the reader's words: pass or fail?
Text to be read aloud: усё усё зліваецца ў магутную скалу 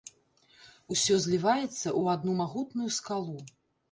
fail